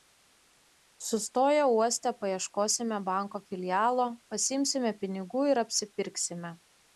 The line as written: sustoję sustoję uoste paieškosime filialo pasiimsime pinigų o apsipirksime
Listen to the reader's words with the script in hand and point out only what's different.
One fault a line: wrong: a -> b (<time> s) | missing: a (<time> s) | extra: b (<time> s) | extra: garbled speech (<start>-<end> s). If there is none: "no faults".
missing: sustoję (1.6 s)
extra: banko (3.1 s)
wrong: o -> ir (5.5 s)